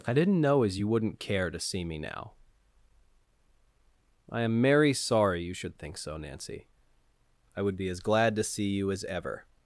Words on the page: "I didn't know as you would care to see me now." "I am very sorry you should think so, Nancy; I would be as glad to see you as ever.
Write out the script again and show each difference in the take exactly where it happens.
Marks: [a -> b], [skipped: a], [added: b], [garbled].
"I didn't know as you [would -> wouldn't] care to see me now." "I am [very -> merry] sorry you should think so, Nancy; I would be as glad to see you as ever.